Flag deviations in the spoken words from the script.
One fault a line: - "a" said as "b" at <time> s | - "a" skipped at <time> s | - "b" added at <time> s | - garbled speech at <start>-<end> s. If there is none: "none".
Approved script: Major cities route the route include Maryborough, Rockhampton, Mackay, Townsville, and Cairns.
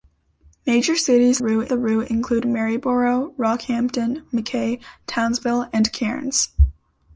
none